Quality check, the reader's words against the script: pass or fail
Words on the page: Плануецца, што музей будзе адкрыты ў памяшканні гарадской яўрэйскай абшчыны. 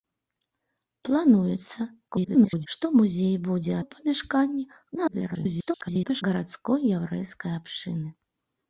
fail